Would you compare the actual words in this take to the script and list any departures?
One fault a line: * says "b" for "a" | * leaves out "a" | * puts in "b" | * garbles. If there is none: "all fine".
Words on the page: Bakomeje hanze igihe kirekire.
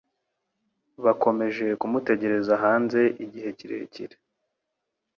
* puts in "kumutegereza"